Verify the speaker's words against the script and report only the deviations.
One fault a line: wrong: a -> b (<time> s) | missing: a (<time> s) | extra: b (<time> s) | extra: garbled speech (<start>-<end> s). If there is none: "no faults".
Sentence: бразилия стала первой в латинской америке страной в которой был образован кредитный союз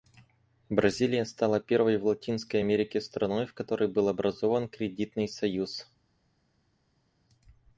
no faults